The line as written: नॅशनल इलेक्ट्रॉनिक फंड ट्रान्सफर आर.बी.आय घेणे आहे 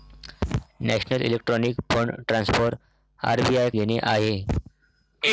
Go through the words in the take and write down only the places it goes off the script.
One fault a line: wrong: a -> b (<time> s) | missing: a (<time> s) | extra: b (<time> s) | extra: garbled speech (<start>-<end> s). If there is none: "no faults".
no faults